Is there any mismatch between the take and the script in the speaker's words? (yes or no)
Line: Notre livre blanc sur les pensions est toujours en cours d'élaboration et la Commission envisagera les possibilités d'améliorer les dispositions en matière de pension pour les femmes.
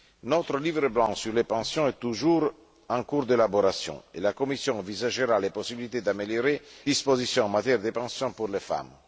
yes